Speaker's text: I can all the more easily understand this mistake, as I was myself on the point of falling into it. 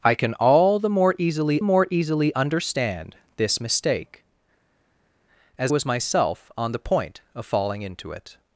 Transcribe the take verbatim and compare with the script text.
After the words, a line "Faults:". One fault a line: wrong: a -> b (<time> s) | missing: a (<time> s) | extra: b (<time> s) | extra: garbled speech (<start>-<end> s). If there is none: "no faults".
I can all the more easily more easily understand this mistake, as was myself on the point of falling into it.
Faults:
extra: more easily (1.6 s)
missing: I (5.7 s)